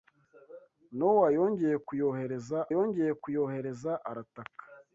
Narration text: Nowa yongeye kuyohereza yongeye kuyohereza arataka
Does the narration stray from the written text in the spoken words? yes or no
no